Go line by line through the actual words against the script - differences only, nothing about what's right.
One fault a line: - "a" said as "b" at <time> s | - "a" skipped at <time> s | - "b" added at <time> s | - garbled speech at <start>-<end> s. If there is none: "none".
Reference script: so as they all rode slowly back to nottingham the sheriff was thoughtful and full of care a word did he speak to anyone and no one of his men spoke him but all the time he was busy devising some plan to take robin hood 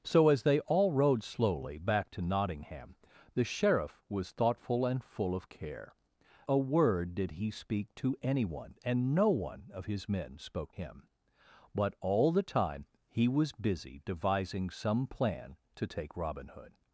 none